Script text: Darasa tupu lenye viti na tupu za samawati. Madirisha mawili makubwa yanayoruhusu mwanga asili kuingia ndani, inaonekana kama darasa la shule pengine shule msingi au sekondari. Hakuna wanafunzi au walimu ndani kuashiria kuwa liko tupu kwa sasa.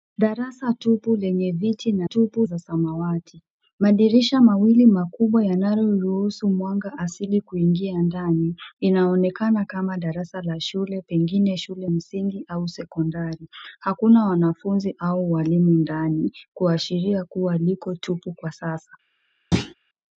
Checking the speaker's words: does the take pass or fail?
pass